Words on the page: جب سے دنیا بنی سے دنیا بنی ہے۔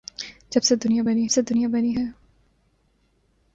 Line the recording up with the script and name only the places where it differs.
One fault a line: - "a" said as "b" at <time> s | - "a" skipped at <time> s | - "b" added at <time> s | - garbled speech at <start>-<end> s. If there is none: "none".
none